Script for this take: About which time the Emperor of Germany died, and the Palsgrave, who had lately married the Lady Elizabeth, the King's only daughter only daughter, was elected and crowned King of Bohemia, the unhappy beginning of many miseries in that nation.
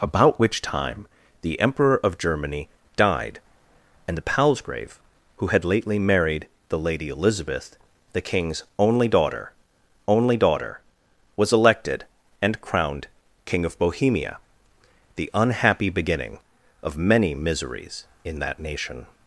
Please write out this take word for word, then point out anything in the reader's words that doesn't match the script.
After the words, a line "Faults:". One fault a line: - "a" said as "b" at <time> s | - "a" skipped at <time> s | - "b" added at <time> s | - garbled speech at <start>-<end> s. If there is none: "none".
About which time the Emperor of Germany died, and the Palsgrave, who had lately married the Lady Elizabeth, the King's only daughter only daughter, was elected and crowned King of Bohemia, the unhappy beginning of many miseries in that nation.
Faults:
none